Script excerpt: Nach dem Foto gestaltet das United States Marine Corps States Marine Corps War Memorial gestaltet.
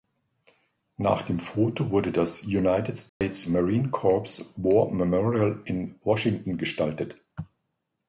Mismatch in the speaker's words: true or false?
true